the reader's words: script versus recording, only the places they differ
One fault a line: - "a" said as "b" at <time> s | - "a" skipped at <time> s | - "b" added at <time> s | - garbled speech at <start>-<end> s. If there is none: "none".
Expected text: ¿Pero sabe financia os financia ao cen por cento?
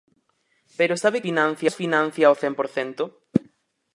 none